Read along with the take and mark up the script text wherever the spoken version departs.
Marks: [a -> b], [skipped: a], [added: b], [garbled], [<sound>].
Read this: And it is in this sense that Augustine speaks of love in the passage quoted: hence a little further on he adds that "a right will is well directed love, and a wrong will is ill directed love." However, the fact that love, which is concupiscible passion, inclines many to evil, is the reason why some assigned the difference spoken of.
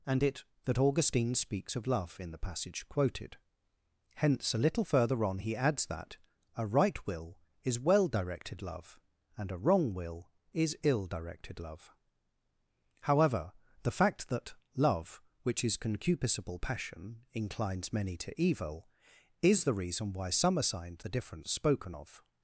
And it [skipped: is in this sense] that Augustine speaks of love in the passage quoted: hence a little further on he adds that "a right will is well directed love, and a wrong will is ill directed love." However, the fact that love, which is concupiscible passion, inclines many to evil, is the reason why some assigned the difference spoken of.